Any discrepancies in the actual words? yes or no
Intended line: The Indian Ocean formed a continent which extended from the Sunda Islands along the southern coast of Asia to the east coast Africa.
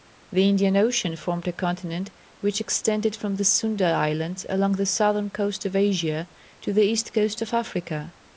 yes